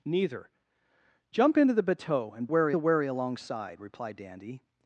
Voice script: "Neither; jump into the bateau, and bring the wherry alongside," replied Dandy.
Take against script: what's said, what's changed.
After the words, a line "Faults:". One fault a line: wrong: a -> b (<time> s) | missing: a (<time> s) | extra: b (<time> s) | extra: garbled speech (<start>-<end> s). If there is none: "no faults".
"Neither; jump into the bateau, and wherry the wherry alongside," replied Dandy.
Faults:
wrong: bring -> wherry (2.5 s)